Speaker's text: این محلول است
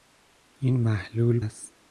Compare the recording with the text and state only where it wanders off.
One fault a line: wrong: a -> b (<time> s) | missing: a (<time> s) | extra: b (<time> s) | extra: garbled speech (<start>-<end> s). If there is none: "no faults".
no faults